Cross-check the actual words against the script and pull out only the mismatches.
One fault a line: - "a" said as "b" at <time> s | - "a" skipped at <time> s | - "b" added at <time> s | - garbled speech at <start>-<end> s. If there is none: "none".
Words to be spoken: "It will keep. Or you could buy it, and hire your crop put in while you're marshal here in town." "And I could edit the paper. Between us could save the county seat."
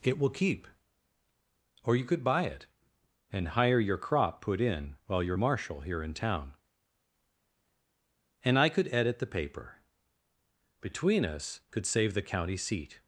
none